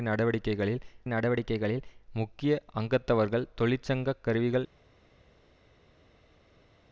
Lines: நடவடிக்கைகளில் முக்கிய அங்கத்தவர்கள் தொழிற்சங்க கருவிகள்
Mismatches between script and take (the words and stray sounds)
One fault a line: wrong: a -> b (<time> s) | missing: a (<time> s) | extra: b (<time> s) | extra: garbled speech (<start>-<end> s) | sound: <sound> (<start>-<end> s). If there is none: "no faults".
extra: நடவடிக்கைகளில் (1.1 s)